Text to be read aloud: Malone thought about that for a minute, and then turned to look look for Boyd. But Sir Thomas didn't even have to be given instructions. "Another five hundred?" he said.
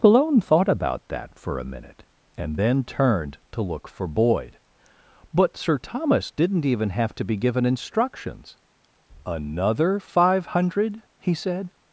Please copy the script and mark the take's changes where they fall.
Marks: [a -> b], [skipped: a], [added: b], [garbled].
Malone thought about that for a minute, and then turned to look [skipped: look] for Boyd. But Sir Thomas didn't even have to be given instructions. "Another five hundred?" he said.